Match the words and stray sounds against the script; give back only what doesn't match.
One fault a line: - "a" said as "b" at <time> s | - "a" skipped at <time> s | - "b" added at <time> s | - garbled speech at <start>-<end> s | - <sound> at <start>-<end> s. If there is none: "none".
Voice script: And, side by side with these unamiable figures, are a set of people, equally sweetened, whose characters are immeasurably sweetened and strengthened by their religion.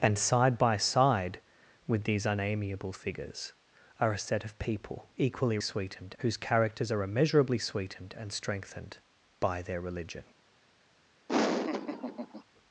- laugh at 11.3-12.4 s